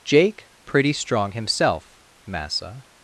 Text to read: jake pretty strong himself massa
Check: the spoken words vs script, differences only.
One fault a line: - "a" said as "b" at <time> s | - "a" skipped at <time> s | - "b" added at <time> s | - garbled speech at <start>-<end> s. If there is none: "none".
none